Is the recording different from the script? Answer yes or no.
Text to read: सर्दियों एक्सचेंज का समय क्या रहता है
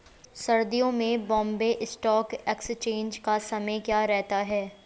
yes